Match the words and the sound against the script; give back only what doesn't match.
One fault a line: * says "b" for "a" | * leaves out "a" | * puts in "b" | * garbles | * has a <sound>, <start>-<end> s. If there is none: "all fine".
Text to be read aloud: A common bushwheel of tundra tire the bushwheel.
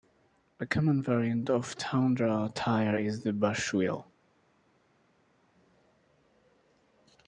* says "variant" for "bushwheel"
* puts in "is"